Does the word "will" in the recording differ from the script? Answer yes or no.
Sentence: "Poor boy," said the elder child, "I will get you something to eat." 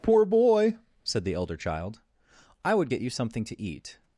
yes